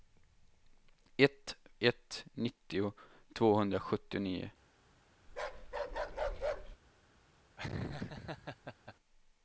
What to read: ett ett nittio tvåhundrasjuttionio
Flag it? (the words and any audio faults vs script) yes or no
yes